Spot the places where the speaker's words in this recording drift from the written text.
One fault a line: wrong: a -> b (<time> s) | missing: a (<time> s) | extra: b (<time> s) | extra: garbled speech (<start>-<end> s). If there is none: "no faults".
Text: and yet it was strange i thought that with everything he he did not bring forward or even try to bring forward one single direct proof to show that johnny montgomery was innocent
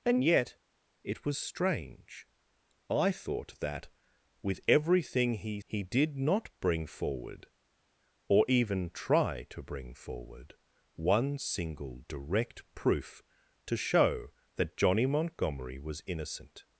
no faults